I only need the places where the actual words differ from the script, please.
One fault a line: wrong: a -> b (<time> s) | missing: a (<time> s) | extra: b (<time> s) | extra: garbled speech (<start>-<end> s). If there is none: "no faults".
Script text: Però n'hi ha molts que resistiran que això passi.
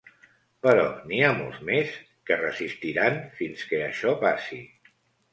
extra: més (1.7 s)
extra: fins (3.4 s)